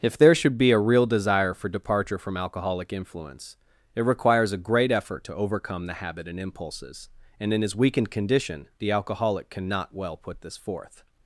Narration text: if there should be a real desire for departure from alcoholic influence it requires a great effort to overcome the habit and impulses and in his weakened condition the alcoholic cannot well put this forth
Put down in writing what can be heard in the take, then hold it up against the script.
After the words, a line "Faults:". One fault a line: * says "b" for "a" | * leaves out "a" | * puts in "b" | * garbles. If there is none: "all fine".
if there should be a real desire for departure from alcoholic influence it requires a great effort to overcome the habit and impulses and in his weakened condition the alcoholic cannot well put this forth
Faults:
all fine